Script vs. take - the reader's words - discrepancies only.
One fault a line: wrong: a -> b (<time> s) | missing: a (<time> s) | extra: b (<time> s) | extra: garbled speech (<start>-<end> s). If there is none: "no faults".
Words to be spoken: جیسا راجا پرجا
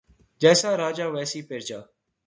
extra: ویسی (1.1 s)